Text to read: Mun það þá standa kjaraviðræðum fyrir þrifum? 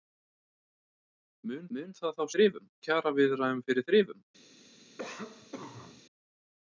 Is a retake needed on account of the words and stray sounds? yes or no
yes